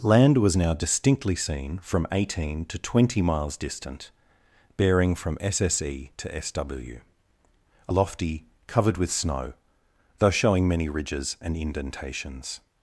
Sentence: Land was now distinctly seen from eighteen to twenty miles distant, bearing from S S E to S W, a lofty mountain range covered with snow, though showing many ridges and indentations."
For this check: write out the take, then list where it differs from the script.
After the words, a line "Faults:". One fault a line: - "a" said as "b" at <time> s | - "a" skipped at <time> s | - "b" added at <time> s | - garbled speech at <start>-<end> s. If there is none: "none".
Land was now distinctly seen from eighteen to twenty miles distant, bearing from S S E to S W, a lofty covered with snow, though showing many ridges and indentations."
Faults:
- "mountain range" skipped at 8.4 s